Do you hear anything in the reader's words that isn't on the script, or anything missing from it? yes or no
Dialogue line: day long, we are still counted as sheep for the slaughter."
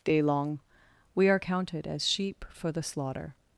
yes